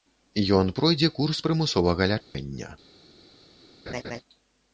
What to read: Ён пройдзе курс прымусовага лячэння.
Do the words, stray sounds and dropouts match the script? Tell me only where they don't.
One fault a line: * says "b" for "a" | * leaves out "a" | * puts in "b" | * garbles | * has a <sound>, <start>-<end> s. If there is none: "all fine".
* has a dropout, 2.2-2.3 s
* has a laugh, 3.9-4.2 s